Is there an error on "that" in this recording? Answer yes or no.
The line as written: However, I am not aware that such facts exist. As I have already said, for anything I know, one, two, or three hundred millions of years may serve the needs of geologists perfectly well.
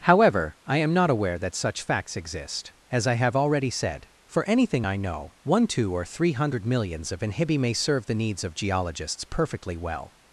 no